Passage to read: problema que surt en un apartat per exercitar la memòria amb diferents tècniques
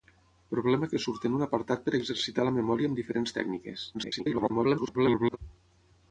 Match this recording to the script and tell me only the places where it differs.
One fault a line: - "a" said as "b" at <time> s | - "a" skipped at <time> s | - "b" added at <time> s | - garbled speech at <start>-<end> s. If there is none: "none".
- garbled speech at 3.9-5.4 s